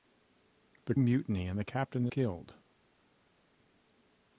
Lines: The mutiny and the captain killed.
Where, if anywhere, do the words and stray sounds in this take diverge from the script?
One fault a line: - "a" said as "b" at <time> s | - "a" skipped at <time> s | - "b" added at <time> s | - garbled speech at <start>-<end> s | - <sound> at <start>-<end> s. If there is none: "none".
none